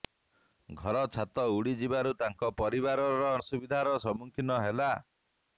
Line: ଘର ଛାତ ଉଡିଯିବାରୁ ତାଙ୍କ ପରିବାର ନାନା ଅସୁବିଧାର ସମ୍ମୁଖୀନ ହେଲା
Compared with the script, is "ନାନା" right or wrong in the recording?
wrong